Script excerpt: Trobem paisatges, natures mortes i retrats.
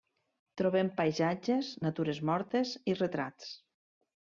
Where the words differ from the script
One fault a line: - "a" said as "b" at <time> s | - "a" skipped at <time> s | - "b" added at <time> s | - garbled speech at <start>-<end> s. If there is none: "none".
none